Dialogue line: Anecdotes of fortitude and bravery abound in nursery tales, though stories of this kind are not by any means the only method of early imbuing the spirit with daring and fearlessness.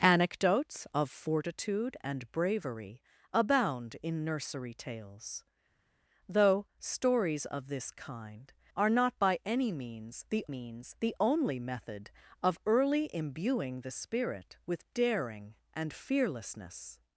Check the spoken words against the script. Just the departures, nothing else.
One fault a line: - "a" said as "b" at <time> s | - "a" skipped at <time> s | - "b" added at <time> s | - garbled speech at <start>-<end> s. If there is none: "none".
- "means the" added at 10.5 s